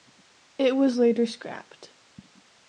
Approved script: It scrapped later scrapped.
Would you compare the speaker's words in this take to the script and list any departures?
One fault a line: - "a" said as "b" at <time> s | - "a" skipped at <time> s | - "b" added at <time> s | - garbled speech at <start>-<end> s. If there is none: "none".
- "scrapped" said as "was" at 0.8 s